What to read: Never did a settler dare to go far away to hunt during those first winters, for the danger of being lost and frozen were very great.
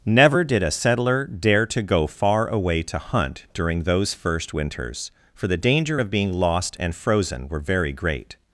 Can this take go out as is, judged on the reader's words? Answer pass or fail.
pass